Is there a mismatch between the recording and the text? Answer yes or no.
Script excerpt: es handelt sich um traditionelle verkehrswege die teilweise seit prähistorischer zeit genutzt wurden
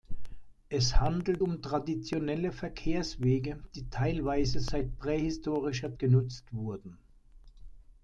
yes